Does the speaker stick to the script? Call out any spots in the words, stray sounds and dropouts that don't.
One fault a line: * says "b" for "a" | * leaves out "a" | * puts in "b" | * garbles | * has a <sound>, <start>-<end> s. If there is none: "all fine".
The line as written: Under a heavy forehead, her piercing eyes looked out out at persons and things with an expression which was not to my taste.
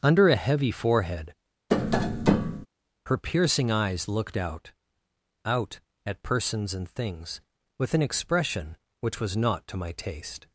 * has a tap, 1.7-2.7 s